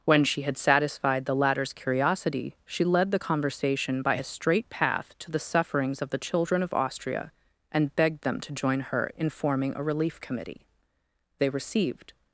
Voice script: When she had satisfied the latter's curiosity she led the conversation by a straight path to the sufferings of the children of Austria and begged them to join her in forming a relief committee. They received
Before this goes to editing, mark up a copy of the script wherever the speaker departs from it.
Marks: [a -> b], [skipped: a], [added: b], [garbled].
When she had satisfied the latter's curiosity she led the conversation by a straight path to the sufferings of the children of Austria and begged them to join her in forming a relief committee. They received